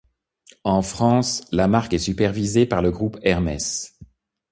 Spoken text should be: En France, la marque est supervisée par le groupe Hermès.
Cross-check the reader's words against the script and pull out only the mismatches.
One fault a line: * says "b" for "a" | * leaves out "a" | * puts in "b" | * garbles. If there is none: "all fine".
all fine